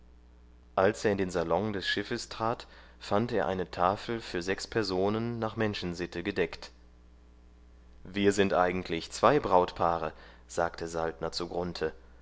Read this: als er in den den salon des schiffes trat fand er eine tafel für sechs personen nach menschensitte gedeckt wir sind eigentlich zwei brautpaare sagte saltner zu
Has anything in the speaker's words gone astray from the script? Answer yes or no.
yes